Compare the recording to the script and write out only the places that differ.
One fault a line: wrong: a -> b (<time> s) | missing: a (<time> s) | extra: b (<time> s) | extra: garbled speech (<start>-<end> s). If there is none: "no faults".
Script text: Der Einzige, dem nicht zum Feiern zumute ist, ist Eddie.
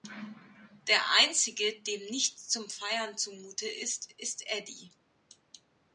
no faults